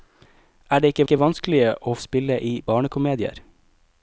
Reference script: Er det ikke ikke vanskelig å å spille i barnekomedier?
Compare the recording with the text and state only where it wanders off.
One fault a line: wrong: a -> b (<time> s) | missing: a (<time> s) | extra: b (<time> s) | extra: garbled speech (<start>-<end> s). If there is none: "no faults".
no faults